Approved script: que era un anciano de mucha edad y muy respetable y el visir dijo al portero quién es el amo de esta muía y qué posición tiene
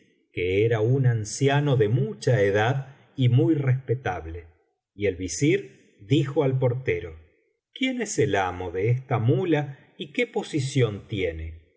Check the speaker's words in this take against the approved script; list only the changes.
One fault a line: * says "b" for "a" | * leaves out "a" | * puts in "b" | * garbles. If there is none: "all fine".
all fine